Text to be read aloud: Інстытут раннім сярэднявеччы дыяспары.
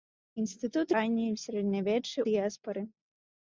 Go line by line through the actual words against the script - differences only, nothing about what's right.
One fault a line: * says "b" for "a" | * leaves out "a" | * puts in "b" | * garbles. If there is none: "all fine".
all fine